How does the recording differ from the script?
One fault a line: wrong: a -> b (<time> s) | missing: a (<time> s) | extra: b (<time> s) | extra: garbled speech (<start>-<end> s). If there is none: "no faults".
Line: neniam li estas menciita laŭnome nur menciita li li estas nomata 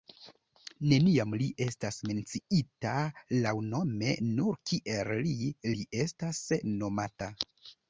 wrong: menciita -> kiel (4.7 s)